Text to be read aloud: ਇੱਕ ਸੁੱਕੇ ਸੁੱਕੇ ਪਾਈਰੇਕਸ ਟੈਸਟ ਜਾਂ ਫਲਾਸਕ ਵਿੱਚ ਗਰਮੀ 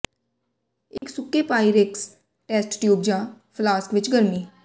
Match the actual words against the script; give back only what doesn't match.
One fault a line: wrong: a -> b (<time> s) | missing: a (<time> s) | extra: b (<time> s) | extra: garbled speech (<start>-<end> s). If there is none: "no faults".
missing: ਸੁੱਕੇ (1.4 s)
extra: ਟਿਊਬ (2.8 s)